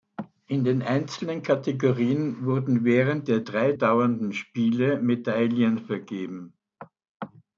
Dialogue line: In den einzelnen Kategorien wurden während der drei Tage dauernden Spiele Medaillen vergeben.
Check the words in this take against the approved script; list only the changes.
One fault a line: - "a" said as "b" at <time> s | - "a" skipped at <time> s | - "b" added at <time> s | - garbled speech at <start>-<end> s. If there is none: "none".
- "Tage" skipped at 3.7 s